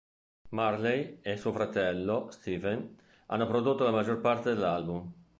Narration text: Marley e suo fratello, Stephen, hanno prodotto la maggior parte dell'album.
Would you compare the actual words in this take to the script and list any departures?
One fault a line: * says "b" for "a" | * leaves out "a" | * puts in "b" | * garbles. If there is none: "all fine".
all fine